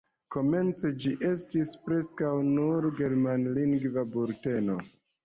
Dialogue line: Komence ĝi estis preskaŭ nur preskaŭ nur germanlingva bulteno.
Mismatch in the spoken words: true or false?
true